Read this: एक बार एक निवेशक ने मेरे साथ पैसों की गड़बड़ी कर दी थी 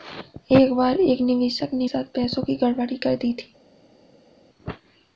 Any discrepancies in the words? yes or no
yes